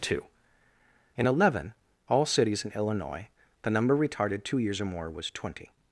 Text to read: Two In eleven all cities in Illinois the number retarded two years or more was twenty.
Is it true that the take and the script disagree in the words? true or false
false